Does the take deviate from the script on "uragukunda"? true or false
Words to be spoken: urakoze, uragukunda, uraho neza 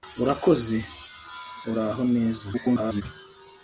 true